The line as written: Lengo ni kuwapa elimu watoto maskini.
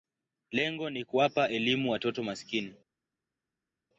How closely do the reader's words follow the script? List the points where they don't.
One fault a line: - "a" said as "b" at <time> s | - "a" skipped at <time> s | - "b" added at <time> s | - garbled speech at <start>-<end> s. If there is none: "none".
none